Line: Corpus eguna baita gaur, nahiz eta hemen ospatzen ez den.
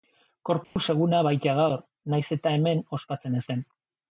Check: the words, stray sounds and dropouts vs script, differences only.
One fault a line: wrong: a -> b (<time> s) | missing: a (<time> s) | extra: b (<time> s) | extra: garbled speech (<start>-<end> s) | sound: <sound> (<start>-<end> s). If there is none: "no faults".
sound: dropout (0.6-0.8 s)